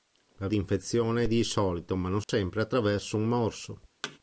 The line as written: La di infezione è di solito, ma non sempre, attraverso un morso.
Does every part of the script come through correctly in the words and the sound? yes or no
no